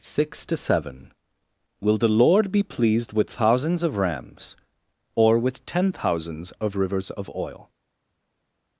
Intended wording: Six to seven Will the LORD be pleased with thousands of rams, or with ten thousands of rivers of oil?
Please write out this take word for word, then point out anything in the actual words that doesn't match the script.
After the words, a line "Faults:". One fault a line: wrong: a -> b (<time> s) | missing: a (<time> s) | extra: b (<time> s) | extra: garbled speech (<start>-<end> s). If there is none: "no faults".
Six to seven Will the LORD be pleased with thousands of rams, or with ten thousands of rivers of oil?
Faults:
no faults